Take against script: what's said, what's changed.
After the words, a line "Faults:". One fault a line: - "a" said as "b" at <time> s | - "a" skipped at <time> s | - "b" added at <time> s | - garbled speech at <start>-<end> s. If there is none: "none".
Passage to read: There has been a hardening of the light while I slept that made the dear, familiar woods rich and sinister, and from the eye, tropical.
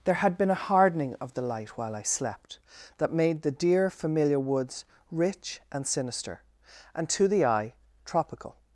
There had been a hardening of the light while I slept that made the dear, familiar woods rich and sinister, and to the eye, tropical.
Faults:
- "has" said as "had" at 0.1 s
- "from" said as "to" at 7.1 s